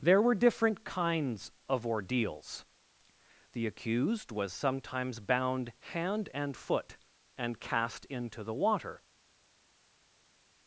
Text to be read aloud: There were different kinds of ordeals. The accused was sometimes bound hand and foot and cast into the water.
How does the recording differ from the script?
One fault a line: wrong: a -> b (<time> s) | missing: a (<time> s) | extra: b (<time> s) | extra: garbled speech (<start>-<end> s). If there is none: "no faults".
no faults